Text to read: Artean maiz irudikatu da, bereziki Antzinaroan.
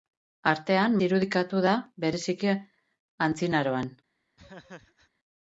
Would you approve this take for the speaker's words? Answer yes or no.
no